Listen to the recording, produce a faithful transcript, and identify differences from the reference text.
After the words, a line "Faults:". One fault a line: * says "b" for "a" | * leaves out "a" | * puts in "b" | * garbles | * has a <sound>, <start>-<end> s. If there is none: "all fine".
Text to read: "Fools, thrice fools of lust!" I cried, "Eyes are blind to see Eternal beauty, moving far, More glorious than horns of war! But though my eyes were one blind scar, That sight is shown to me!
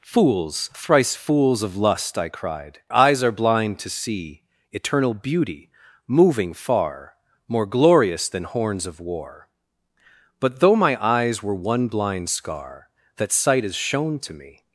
"Fools, thrice fools of lust!" I cried, "Eyes are blind to see Eternal beauty, moving far, More glorious than horns of war! But though my eyes were one blind scar, That sight is shown to me!
Faults:
all fine